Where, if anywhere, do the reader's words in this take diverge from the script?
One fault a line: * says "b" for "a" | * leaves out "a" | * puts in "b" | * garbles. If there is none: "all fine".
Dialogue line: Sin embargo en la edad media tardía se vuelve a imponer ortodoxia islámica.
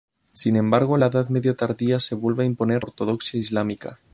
all fine